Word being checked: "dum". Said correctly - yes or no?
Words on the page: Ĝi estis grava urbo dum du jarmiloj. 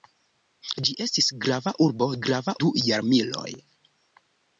no